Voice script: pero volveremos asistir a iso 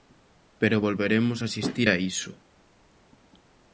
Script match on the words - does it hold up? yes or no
yes